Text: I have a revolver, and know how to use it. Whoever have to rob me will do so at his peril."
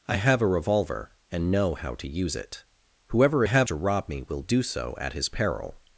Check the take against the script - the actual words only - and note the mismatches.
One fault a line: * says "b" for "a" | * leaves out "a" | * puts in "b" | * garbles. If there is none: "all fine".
all fine